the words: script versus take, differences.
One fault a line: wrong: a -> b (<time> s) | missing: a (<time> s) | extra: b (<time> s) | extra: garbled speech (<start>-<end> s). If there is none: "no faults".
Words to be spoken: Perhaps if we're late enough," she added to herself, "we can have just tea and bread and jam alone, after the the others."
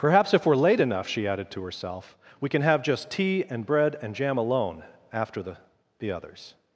no faults